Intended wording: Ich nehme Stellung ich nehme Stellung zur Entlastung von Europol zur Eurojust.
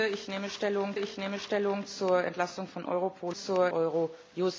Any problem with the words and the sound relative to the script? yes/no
no